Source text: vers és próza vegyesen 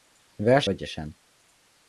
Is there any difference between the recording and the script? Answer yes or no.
yes